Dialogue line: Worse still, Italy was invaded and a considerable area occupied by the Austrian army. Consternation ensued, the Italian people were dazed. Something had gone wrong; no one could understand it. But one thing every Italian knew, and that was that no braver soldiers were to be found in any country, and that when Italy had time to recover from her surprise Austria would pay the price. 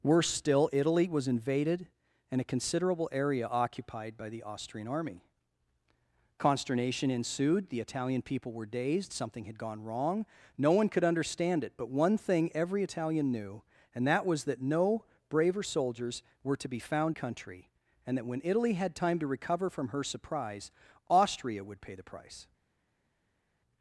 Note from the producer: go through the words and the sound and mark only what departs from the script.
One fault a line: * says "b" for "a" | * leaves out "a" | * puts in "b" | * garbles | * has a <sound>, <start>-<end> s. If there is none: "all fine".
* leaves out "in any"